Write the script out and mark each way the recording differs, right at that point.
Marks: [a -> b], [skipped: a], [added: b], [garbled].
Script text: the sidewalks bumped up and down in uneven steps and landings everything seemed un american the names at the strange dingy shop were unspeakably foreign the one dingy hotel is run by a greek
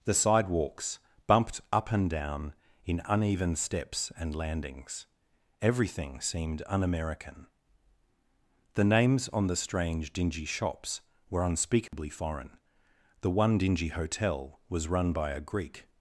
the sidewalks bumped up and down in uneven steps and landings everything seemed un american the names [at -> on] the strange dingy [shop -> shops] were unspeakably foreign the one dingy hotel [is -> was] run by a greek